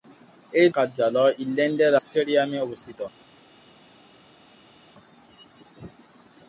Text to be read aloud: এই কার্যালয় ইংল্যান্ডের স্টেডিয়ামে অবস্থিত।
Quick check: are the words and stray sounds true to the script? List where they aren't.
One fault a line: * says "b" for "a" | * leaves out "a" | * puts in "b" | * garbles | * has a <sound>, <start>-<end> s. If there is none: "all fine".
all fine